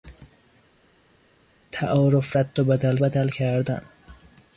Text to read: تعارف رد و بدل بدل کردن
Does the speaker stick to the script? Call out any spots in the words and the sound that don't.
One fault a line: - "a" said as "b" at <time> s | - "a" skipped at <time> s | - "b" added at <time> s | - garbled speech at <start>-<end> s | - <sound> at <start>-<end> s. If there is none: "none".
none